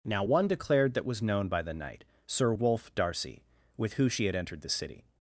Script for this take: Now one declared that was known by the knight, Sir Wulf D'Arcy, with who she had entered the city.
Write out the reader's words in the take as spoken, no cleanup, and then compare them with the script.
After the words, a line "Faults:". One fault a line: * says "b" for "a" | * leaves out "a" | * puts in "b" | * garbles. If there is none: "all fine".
Now one declared that was known by the knight, Sir Wulf D'Arcy, with who she had entered the city.
Faults:
all fine